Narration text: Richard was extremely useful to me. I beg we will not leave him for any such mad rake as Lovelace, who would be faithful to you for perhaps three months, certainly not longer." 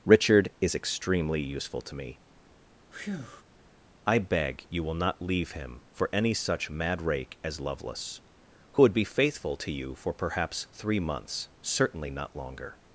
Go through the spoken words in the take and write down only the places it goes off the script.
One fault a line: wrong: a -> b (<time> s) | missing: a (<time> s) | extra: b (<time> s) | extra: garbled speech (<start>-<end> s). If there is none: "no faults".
wrong: was -> is (0.6 s)
wrong: we -> you (4.7 s)